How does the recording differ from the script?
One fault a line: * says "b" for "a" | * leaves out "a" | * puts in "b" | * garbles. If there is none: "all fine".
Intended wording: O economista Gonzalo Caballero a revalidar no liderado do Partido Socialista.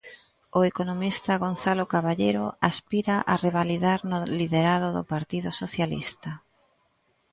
* puts in "aspira"